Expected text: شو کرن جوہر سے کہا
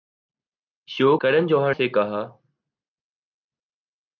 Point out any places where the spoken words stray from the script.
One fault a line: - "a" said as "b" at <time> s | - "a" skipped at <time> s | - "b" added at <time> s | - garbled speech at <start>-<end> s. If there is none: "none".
none